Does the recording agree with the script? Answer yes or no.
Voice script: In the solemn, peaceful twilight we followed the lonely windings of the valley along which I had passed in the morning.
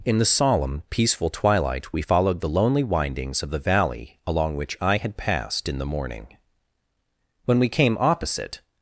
no